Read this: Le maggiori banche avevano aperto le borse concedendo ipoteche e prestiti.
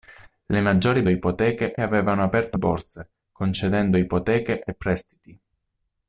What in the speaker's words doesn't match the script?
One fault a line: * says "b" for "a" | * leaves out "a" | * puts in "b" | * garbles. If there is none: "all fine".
* says "ipoteche" for "banche"
* leaves out "le"